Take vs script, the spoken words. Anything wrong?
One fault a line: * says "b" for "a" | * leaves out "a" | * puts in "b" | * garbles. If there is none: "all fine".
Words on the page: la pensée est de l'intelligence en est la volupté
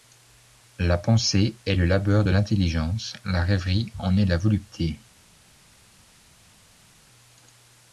* puts in "le labeur"
* puts in "la rêverie"